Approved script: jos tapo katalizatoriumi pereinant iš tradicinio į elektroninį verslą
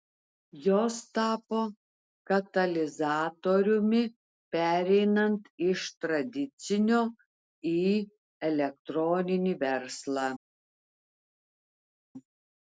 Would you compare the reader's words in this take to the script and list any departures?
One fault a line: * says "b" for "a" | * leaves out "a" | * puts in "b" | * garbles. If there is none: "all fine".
all fine